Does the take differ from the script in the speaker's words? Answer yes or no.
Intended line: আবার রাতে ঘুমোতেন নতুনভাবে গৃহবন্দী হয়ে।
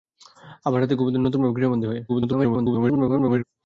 yes